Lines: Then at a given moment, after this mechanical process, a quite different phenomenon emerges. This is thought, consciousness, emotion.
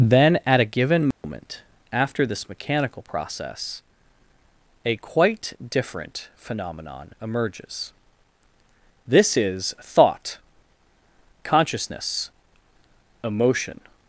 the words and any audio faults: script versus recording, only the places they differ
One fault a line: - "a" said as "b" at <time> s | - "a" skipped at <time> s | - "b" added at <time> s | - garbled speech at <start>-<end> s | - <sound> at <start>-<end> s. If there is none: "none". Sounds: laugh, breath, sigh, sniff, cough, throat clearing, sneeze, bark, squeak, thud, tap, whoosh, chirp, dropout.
- dropout at 1.1-1.2 s